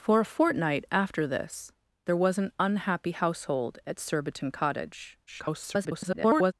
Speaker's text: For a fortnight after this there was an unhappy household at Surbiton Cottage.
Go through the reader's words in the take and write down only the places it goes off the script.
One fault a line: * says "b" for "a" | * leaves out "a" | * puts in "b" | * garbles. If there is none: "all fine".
* garbles